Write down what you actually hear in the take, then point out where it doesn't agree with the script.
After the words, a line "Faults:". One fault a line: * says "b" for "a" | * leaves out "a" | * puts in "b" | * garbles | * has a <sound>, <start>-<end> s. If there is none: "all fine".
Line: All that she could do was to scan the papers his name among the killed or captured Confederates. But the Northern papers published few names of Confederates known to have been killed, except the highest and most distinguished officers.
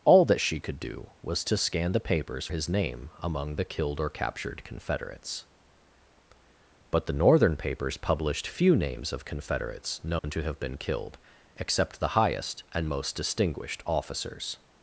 All that she could do was to scan the papers his name among the killed or captured Confederates. But the Northern papers published few names of Confederates known to have been killed, except the highest and most distinguished officers.
Faults:
* has a dropout, 10.2-10.2 s